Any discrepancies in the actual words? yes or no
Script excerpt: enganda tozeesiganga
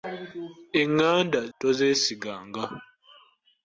no